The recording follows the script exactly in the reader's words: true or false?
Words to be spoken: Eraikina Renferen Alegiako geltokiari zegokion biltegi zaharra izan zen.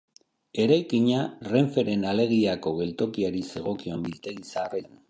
false